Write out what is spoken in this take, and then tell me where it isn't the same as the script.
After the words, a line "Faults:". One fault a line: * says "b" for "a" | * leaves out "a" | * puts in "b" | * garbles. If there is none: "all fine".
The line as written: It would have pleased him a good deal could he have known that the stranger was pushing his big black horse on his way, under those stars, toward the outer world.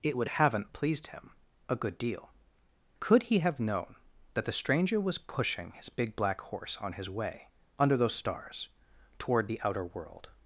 It would haven't pleased him a good deal could he have known that the stranger was pushing his big black horse on his way, under those stars, toward the outer world.
Faults:
* says "haven't" for "have"